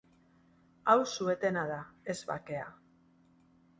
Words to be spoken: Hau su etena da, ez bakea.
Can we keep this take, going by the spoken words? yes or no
yes